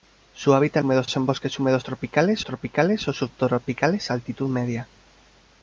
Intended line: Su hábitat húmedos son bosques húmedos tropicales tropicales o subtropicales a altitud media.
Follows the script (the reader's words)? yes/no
yes